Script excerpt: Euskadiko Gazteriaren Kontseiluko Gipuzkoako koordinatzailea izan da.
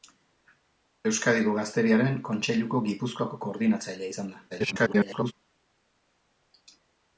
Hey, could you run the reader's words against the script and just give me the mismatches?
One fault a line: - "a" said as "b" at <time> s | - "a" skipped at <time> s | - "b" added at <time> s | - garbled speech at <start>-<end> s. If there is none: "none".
- garbled speech at 4.5-5.3 s